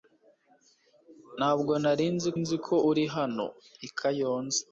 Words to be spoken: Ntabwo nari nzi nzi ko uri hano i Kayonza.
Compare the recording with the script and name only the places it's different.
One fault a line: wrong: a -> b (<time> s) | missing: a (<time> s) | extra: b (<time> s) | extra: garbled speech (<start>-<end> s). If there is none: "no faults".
no faults